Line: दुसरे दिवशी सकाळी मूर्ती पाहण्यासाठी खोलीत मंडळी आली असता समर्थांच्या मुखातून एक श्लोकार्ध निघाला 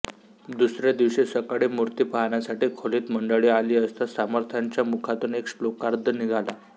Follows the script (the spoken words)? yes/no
yes